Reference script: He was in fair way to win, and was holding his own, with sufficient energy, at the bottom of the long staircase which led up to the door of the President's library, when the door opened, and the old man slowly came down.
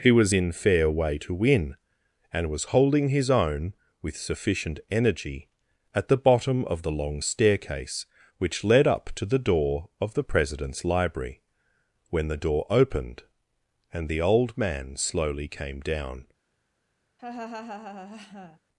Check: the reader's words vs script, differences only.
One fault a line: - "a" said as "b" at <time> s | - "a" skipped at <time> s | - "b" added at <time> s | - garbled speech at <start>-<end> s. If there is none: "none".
none